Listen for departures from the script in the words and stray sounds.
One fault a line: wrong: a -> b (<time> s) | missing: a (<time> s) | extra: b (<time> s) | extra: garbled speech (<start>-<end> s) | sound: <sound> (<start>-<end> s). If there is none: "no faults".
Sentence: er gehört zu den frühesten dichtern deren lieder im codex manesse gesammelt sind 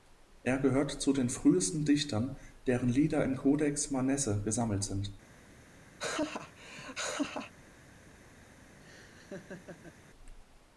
sound: laugh (6.0-7.5 s)
sound: laugh (8.8-10.0 s)